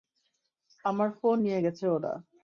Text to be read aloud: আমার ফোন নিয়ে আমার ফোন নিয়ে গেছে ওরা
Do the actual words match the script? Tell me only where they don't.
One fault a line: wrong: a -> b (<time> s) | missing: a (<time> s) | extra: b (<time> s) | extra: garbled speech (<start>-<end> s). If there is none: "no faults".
missing: আমার ফোন নিয়ে (1.6 s)